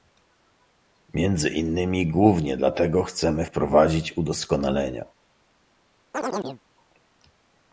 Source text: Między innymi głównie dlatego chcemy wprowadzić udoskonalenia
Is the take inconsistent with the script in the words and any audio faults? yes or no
yes